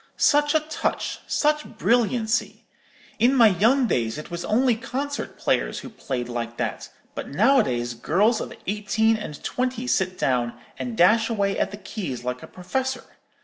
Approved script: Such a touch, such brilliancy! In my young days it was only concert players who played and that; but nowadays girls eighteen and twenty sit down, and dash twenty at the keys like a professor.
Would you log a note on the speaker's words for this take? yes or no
yes